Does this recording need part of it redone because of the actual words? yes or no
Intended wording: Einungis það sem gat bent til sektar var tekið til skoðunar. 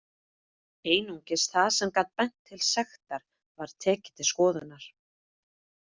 no